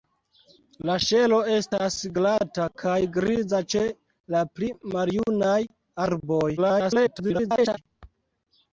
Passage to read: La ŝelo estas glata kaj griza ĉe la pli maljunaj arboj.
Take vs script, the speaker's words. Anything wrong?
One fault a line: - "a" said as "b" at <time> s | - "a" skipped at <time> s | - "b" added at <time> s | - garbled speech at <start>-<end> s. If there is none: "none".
- garbled speech at 6.6-7.8 s